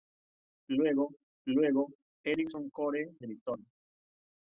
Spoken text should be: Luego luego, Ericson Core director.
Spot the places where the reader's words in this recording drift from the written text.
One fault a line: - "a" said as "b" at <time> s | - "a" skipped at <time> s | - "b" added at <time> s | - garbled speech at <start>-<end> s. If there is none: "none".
none